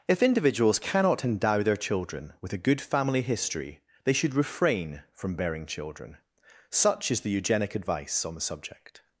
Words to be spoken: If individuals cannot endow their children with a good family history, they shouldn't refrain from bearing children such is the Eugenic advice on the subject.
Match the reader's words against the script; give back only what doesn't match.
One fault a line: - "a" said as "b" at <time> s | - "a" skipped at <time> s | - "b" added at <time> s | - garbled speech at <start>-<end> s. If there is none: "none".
- "shouldn't" said as "should" at 4.1 s